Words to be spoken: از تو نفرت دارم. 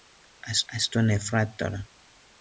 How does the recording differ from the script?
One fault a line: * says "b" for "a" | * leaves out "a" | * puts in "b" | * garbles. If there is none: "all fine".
* puts in "از"